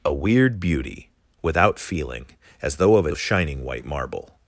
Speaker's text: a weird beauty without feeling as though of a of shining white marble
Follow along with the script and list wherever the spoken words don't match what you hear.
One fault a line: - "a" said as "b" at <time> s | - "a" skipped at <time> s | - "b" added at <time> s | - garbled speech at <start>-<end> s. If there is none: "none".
none